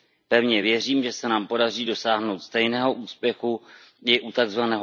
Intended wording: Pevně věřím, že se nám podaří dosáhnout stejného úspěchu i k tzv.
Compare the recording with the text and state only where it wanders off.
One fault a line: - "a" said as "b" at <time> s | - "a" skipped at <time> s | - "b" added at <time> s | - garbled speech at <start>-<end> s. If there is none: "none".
- "k" said as "u" at 4.2 s